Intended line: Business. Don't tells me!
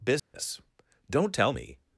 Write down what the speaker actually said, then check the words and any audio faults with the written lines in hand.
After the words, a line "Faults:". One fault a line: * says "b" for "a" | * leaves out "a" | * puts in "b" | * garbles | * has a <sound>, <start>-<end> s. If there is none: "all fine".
Business. Don't tell me!
Faults:
* has a dropout, 0.2-0.3 s
* says "tell" for "tells"